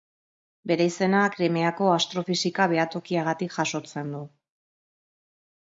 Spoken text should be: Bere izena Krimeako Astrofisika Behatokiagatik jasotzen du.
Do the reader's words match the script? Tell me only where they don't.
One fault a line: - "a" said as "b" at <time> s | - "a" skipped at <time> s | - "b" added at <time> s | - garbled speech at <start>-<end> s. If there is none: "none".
none